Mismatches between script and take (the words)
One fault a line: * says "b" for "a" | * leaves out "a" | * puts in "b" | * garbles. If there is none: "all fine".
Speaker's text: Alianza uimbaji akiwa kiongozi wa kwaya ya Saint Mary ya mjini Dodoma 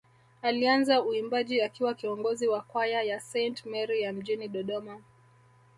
all fine